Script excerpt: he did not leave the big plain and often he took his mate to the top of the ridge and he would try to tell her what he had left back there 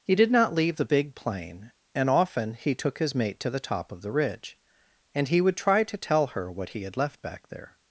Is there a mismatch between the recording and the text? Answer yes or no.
no